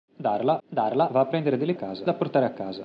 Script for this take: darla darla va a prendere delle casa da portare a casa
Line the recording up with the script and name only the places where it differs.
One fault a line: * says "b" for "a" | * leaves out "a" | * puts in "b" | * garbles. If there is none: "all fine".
all fine